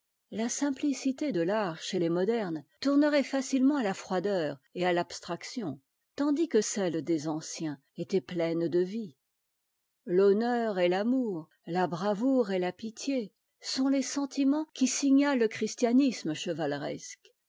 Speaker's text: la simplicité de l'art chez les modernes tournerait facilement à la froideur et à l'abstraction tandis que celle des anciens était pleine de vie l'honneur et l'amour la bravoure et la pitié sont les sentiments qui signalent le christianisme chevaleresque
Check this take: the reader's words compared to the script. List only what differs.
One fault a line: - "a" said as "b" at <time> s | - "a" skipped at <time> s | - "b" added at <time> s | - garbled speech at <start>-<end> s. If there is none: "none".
none